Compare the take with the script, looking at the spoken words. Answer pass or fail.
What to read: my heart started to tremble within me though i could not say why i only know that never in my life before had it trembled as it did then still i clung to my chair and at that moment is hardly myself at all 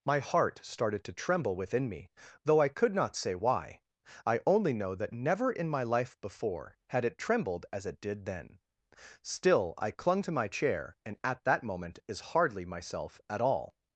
pass